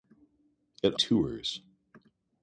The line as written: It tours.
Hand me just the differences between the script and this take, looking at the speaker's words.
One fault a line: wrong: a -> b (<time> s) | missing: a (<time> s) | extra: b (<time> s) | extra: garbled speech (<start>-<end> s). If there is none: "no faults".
no faults